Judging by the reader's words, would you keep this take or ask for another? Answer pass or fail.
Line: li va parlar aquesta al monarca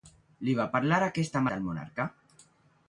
pass